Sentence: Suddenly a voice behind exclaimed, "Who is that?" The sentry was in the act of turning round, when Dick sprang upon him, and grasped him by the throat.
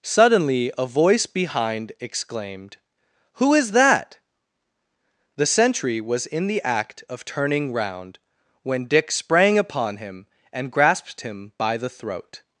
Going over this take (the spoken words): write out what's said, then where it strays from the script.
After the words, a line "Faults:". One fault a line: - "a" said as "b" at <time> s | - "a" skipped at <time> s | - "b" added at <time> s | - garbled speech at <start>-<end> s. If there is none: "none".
Suddenly a voice behind exclaimed, "Who is that?" The sentry was in the act of turning round, when Dick sprang upon him, and grasped him by the throat.
Faults:
none